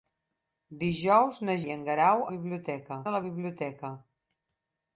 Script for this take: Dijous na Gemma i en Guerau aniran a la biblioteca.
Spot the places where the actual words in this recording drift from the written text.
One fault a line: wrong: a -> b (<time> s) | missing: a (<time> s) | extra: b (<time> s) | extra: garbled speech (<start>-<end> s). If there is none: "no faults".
missing: Gemma (1.6 s)
wrong: aniran -> biblioteca (2.3 s)